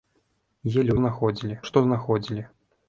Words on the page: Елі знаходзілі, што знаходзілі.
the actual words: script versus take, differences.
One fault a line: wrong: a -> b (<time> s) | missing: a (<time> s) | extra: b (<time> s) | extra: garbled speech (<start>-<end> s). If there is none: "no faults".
no faults